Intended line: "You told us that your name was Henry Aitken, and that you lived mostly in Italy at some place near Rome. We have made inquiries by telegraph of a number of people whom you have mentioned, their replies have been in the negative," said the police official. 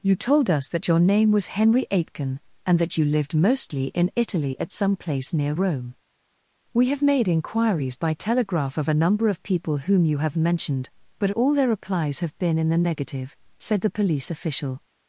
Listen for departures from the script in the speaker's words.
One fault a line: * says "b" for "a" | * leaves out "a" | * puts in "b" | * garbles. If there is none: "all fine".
* puts in "but all"